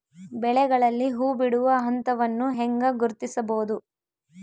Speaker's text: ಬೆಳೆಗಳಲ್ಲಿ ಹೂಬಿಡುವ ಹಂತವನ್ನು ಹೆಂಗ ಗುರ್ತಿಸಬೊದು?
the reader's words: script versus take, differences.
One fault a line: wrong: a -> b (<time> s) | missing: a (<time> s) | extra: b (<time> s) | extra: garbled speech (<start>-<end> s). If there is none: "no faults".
no faults